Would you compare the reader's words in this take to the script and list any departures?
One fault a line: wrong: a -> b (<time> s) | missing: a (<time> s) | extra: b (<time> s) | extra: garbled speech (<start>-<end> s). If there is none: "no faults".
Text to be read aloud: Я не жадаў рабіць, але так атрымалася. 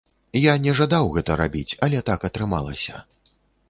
extra: гэта (1.2 s)